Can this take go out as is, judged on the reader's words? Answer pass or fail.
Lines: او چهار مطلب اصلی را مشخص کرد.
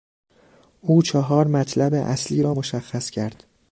pass